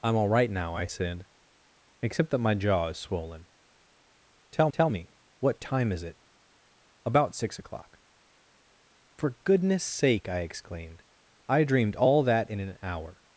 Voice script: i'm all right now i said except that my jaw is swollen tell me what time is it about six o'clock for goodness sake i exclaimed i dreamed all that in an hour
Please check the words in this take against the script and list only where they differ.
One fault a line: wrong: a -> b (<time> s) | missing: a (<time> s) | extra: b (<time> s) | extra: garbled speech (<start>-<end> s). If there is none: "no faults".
extra: tell (4.7 s)